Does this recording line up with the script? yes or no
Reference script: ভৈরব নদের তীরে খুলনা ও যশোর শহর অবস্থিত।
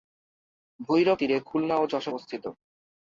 no